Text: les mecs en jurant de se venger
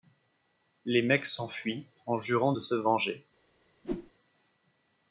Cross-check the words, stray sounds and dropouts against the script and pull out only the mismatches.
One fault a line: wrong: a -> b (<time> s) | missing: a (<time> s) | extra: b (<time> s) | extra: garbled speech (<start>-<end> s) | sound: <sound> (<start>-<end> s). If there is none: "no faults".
extra: s'enfuient (1.3 s)
sound: whoosh (3.8-4.1 s)